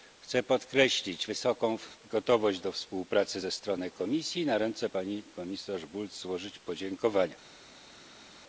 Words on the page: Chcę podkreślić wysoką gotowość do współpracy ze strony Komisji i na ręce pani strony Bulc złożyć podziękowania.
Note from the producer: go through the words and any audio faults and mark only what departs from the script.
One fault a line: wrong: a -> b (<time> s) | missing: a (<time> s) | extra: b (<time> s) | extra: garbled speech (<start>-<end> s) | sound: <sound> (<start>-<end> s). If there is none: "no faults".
wrong: strony -> komisarz (5.2 s)